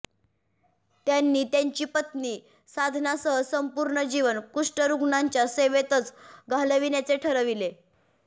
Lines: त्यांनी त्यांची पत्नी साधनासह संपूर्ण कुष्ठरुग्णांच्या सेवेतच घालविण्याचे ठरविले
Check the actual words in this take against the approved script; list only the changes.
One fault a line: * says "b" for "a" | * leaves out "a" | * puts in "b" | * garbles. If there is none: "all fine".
* puts in "जीवन"